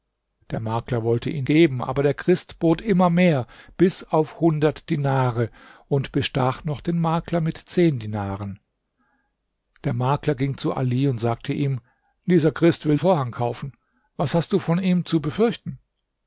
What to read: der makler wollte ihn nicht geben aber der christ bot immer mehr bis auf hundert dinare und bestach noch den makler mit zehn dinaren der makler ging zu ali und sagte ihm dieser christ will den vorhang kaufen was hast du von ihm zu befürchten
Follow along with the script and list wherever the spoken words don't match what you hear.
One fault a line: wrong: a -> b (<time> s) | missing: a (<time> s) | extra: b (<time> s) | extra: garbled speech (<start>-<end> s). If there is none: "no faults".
missing: nicht (1.4 s)
missing: den (13.0 s)